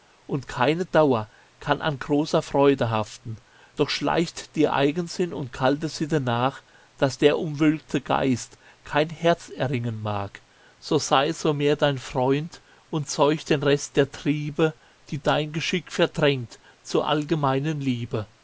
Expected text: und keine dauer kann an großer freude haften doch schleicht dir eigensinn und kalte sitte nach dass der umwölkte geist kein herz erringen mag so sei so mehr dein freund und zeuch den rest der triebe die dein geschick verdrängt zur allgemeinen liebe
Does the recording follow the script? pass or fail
pass